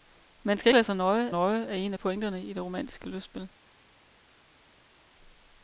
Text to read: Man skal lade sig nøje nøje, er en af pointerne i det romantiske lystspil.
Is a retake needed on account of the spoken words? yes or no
no